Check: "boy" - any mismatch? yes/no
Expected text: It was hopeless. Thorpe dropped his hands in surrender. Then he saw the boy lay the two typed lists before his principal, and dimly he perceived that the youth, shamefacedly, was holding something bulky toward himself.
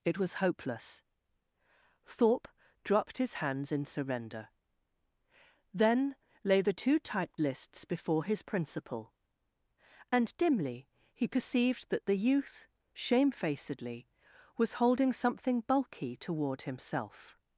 yes